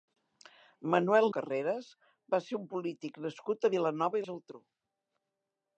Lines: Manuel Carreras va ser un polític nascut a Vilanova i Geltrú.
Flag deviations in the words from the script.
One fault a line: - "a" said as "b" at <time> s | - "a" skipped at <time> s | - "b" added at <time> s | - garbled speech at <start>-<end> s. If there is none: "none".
none